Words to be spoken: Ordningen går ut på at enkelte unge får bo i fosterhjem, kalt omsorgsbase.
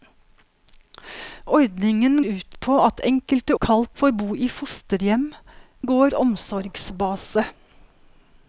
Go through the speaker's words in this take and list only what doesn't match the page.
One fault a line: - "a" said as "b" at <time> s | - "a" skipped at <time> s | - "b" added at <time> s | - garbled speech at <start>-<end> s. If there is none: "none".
- "går" skipped at 2.1 s
- "unge" said as "kalt" at 3.6 s
- "kalt" said as "går" at 5.9 s